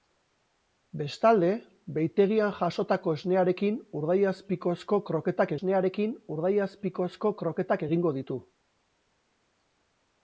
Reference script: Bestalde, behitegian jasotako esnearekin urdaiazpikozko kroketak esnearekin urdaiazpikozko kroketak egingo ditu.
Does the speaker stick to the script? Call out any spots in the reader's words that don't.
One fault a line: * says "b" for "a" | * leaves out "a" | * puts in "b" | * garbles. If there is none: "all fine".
all fine